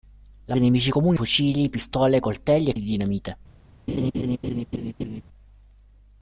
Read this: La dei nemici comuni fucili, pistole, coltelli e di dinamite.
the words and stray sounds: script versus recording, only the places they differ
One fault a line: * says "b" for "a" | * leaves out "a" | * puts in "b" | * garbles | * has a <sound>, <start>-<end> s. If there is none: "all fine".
* has a laugh, 3.9-5.2 s